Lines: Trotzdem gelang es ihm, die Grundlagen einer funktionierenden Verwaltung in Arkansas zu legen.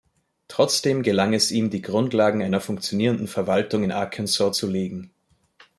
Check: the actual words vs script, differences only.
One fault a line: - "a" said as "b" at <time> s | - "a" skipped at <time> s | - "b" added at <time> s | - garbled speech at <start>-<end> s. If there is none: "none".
none